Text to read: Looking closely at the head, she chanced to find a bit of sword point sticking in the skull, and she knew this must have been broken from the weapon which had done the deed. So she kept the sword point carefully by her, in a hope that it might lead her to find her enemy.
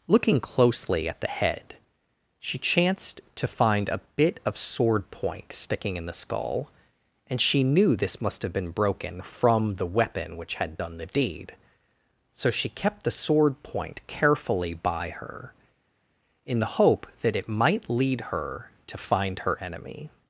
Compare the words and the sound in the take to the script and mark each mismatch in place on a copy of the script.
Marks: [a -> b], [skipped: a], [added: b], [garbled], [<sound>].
Looking closely at the head, she chanced to find a bit of sword point sticking in the skull, and she knew this must have been broken from the weapon which had done the deed. So she kept the sword point carefully by her, in [a -> the] hope that it might lead her to find her enemy.